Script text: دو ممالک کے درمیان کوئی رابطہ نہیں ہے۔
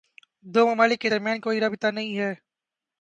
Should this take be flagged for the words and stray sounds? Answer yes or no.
no